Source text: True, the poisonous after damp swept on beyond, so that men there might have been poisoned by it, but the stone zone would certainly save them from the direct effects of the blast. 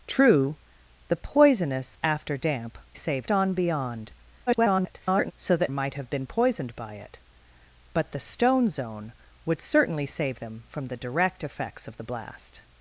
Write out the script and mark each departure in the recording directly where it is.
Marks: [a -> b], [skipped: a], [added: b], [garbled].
True, the poisonous after damp [swept -> save] on beyond, [garbled] so that [skipped: men there] might have been poisoned by it, but the stone zone would certainly save them from the direct effects of the blast.